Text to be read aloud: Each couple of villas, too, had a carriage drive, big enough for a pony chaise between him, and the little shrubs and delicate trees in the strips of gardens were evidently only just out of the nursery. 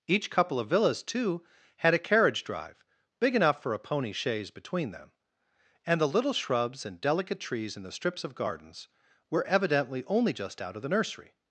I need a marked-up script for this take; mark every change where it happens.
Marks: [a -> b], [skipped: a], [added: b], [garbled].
Each couple of villas, too, had a carriage drive, big enough for a pony chaise between [him, -> them] and the little shrubs and delicate trees in the strips of gardens were evidently only just out of the nursery.